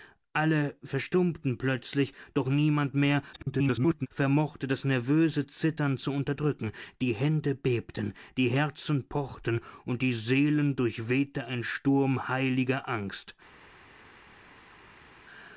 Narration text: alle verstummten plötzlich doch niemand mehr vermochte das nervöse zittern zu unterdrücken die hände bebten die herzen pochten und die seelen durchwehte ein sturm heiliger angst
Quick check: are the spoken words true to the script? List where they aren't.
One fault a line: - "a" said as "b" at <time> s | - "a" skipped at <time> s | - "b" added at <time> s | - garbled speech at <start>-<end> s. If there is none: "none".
- garbled speech at 3.3-4.1 s